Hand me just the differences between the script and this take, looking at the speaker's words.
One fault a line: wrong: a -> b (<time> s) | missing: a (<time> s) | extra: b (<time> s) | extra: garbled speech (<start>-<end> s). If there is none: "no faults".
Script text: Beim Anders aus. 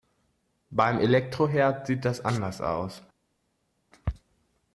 extra: Elektroherd sieht das (1.0 s)